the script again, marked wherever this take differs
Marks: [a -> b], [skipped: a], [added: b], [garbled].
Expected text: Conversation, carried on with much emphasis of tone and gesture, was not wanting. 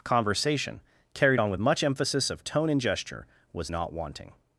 Conversation, carried on with much emphasis of tone and gesture, was not wanting.